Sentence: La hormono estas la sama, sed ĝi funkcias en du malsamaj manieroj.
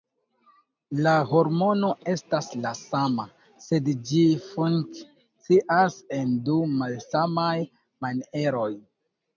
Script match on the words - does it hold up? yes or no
yes